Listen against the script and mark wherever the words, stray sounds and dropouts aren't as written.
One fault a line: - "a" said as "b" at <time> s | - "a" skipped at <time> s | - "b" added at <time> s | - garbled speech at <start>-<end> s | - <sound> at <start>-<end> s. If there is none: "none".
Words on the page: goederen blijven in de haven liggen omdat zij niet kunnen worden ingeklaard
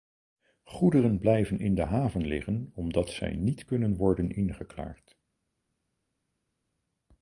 none